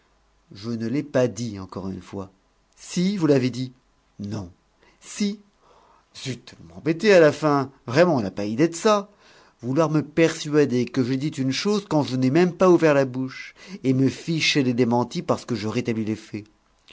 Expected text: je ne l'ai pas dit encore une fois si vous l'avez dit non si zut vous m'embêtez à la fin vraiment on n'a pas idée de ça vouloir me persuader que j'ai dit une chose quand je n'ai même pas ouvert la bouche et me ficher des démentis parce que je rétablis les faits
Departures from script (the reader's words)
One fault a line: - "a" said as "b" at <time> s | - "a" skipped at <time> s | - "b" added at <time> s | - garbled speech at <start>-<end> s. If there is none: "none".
none